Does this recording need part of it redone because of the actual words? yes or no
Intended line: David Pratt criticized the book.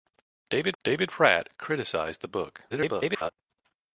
yes